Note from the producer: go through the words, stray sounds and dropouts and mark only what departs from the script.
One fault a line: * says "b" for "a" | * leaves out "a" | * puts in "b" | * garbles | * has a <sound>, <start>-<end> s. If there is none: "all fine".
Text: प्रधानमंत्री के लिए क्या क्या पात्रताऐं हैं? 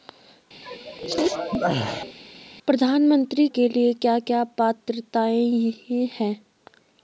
* has a sneeze, 0.6-2.2 s